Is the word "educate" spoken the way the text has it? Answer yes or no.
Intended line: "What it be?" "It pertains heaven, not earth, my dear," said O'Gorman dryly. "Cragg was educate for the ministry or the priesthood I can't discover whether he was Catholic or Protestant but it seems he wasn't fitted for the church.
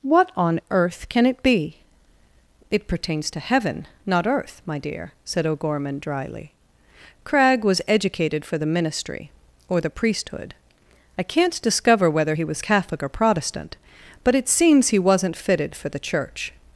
no